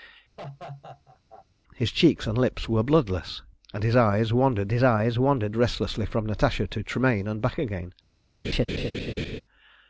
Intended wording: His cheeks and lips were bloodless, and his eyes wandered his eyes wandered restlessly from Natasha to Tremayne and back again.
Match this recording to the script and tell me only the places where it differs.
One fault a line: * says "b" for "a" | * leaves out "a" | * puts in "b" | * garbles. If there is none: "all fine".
all fine